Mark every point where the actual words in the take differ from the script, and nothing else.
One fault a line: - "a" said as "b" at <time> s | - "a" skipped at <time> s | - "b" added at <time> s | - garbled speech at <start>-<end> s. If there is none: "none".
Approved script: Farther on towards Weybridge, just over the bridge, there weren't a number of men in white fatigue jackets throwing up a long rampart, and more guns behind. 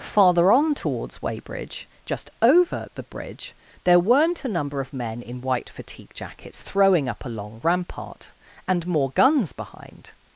none